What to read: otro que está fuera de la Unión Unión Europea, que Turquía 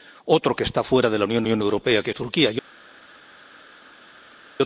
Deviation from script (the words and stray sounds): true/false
false